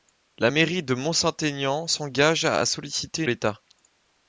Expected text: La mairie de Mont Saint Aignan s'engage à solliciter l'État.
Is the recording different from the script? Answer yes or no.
no